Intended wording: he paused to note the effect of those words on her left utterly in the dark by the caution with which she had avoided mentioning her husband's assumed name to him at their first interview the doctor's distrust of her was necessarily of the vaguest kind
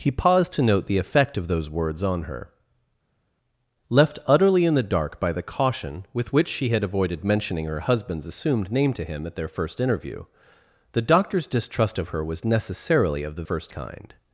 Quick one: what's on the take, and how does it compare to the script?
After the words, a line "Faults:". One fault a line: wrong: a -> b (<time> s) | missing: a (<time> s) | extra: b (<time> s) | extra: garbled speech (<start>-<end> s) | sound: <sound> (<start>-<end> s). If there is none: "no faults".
he paused to note the effect of those words on her left utterly in the dark by the caution with which she had avoided mentioning her husband's assumed name to him at their first interview the doctor's distrust of her was necessarily of the first kind
Faults:
wrong: vaguest -> first (13.4 s)